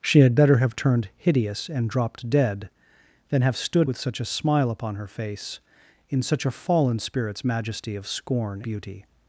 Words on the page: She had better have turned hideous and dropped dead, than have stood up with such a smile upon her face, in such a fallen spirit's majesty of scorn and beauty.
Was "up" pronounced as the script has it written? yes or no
no